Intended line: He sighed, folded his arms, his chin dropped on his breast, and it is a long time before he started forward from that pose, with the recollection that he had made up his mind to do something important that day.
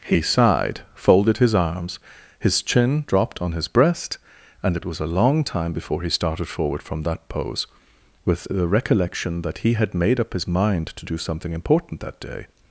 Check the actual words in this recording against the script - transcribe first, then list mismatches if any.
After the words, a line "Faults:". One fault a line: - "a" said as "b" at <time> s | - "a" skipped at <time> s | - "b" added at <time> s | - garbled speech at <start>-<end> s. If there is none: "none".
He sighed, folded his arms, his chin dropped on his breast, and it was a long time before he started forward from that pose, with the recollection that he had made up his mind to do something important that day.
Faults:
- "is" said as "was" at 4.8 s